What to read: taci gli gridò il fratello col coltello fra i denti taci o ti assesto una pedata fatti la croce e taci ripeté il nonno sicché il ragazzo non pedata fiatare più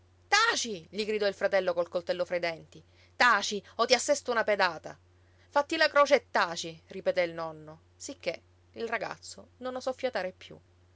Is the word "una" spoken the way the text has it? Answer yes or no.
yes